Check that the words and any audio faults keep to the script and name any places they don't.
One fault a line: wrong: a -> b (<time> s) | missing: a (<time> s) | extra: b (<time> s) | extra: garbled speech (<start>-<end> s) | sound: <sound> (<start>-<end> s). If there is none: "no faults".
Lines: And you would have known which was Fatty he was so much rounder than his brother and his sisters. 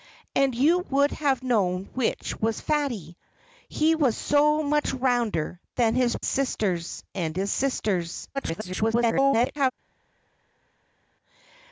wrong: brother -> sisters (6.2 s)
extra: garbled speech (8.3-9.7 s)